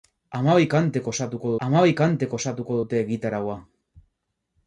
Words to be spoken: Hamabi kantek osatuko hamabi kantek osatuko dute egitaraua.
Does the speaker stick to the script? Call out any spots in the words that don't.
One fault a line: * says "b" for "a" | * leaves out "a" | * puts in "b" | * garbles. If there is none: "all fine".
all fine